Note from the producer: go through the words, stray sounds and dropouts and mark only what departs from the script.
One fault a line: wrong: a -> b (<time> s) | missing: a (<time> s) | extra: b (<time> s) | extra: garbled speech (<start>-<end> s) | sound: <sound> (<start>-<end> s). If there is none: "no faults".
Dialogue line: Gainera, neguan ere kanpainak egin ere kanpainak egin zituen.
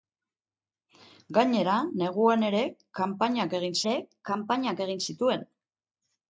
no faults